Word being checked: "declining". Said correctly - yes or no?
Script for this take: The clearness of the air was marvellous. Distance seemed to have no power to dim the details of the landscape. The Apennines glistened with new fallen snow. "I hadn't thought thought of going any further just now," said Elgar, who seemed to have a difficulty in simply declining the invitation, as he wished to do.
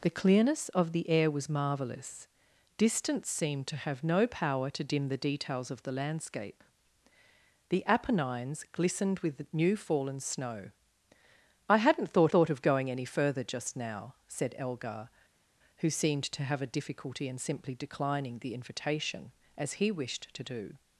yes